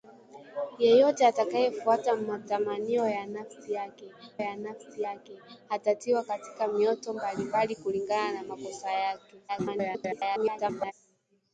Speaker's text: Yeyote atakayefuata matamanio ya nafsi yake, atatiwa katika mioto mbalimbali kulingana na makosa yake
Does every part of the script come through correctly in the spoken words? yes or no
no